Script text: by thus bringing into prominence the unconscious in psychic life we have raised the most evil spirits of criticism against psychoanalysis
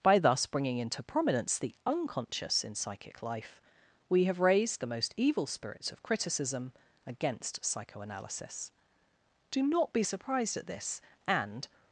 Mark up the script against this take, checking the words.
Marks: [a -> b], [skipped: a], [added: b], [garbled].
by thus bringing into prominence the unconscious in psychic life we have raised the most evil spirits of criticism against psychoanalysis [added: do not be surprised at this and]